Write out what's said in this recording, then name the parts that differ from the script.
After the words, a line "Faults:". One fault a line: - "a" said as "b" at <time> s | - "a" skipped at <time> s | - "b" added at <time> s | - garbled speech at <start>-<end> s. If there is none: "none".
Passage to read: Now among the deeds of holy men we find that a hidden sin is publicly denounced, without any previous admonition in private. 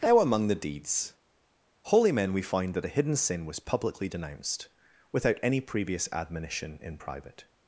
Now among the deeds holy men we find that a hidden sin was publicly denounced, without any previous admonition in private.
Faults:
- "of" skipped at 1.1 s
- "is" said as "was" at 3.5 s